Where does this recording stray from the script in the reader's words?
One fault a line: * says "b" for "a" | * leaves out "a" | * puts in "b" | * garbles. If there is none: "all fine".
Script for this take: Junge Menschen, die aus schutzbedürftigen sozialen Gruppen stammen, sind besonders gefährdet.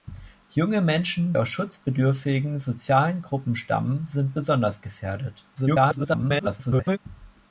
* leaves out "die"
* garbles